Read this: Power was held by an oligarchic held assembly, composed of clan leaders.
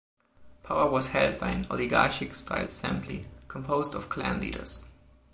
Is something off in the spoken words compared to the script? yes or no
yes